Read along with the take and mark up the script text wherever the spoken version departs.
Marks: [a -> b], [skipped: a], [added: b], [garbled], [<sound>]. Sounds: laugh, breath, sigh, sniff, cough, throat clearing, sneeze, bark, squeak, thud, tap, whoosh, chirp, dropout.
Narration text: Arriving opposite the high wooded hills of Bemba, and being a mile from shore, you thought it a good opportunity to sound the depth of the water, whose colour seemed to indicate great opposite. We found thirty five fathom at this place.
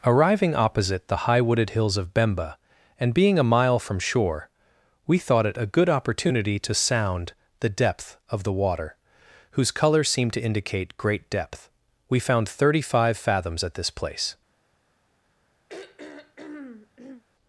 Arriving opposite the high wooded hills of Bemba, and being a mile from shore, [you -> we] thought it a good opportunity to sound the depth of the water, whose colour seemed to indicate great [opposite. -> depth] We found thirty five [fathom -> fathoms] at this place. [throat clearing]